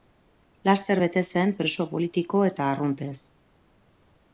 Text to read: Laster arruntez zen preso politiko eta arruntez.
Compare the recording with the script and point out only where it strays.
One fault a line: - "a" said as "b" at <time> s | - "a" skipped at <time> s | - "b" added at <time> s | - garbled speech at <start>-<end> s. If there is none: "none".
- "arruntez" said as "bete" at 1.0 s